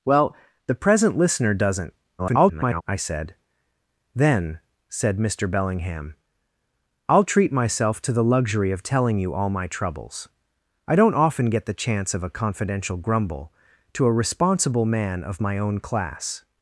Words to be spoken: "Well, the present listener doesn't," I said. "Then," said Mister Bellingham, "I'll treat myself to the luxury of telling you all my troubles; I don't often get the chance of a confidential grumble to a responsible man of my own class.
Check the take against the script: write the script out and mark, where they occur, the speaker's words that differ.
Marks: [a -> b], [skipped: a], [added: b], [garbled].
"Well, the present listener doesn't," [garbled] I said. "Then," said Mister Bellingham, "I'll treat myself to the luxury of telling you all my troubles; I don't often get the chance of a confidential grumble to a responsible man of my own class.